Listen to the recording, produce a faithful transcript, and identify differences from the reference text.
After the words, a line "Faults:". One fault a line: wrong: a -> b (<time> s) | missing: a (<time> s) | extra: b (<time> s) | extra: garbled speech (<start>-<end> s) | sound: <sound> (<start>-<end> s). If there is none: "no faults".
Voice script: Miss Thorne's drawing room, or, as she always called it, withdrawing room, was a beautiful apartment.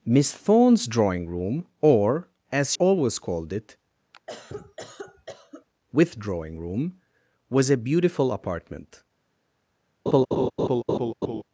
Miss Thorne's drawing room, or, as always called it, withdrawing room, was a beautiful apartment.
Faults:
missing: she (2.7 s)
sound: cough (4.1-5.7 s)
sound: laugh (10.1-11.4 s)